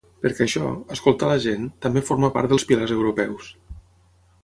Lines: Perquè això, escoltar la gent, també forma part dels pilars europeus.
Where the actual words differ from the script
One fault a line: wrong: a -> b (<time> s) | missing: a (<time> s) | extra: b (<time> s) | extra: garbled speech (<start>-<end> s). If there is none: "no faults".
no faults